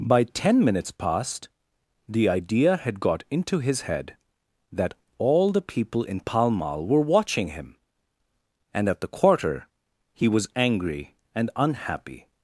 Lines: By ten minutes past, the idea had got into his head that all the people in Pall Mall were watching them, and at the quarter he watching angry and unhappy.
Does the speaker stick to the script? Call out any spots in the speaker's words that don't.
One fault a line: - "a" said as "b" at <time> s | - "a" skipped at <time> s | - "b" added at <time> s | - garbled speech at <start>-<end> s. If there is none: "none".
- "them" said as "him" at 7.5 s
- "watching" said as "was" at 10.3 s